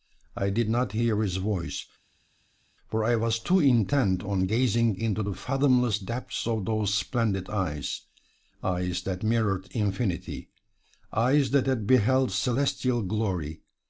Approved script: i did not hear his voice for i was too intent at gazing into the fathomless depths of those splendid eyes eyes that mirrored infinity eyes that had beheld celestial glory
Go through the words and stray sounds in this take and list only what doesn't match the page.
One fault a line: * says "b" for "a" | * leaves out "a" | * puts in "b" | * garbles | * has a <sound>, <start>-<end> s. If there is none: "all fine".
* says "on" for "at"